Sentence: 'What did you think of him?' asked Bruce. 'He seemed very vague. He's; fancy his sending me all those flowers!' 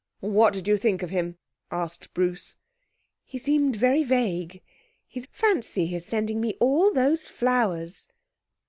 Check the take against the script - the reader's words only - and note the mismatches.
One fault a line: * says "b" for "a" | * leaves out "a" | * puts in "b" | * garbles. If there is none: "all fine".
all fine